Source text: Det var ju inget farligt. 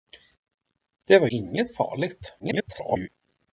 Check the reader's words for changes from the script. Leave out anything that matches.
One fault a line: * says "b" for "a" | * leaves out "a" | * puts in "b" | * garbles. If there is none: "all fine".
* leaves out "ju"
* garbles